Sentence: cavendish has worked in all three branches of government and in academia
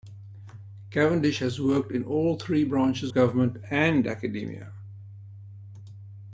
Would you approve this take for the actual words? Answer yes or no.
no